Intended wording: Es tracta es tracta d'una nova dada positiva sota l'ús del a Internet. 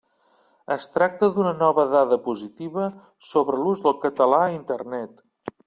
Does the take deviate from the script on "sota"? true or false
true